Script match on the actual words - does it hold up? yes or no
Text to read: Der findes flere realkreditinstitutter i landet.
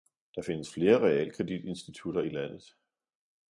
yes